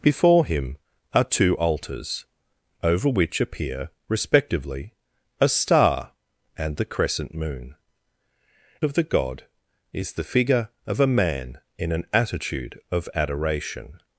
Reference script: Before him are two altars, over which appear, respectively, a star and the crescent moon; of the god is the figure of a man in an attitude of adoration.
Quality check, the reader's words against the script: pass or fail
pass